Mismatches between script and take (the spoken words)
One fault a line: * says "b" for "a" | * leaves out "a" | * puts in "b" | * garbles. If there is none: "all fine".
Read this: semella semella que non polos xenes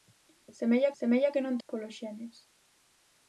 all fine